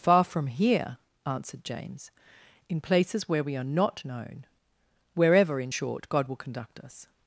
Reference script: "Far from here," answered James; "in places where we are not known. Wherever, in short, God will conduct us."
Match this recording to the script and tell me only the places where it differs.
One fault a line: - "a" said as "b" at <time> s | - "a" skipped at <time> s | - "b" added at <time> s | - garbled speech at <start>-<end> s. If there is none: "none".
none